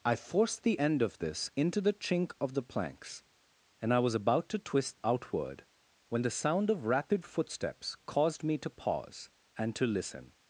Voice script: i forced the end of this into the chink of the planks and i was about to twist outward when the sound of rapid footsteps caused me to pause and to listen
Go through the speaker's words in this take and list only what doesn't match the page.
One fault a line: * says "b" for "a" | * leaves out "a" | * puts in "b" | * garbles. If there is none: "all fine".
all fine